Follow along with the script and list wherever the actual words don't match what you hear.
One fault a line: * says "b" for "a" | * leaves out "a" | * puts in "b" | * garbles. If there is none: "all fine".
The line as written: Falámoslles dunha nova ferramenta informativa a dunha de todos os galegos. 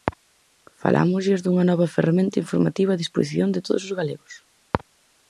* says "disposición" for "dunha"